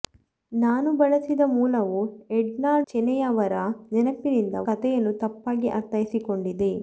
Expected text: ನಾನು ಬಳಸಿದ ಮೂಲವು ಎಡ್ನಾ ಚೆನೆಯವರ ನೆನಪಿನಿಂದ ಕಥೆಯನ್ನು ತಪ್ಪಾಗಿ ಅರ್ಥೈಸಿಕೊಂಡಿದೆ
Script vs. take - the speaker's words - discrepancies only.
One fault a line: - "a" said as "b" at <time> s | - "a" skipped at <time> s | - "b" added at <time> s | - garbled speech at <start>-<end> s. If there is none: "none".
none